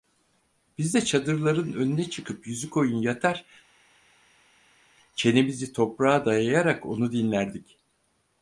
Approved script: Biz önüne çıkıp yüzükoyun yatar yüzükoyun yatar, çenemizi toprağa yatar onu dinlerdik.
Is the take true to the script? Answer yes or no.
no